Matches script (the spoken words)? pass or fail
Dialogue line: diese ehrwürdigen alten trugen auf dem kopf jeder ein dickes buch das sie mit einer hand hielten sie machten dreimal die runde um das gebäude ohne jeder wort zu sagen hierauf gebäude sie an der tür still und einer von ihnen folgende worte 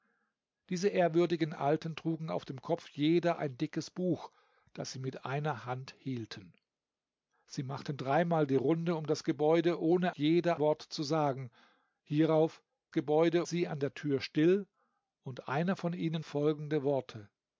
pass